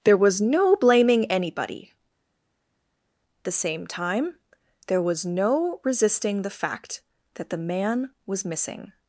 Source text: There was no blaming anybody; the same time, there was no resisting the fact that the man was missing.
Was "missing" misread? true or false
false